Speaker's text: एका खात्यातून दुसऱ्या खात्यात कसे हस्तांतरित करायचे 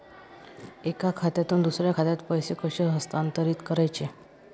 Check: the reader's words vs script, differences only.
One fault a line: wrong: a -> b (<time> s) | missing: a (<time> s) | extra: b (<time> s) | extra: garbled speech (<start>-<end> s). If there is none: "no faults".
extra: पैसे (2.3 s)